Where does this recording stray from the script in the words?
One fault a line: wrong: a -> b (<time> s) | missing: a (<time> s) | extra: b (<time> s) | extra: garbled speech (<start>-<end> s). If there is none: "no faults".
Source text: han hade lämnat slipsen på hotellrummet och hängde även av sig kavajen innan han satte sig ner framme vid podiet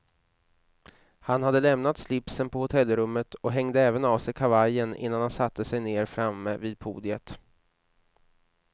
no faults